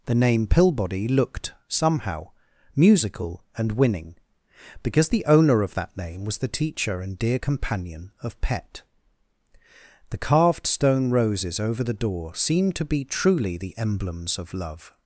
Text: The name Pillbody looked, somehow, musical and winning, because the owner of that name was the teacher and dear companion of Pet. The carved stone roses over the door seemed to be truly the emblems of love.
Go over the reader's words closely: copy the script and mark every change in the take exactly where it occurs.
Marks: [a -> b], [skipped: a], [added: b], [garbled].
The name Pillbody looked, somehow, musical and winning, because the owner of that name was the teacher and dear companion of Pet. The carved stone roses over the door seemed to be truly the emblems of love.